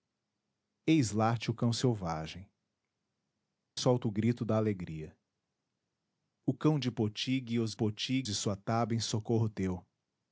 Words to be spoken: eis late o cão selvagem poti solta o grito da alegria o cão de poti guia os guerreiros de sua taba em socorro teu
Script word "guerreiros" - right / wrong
wrong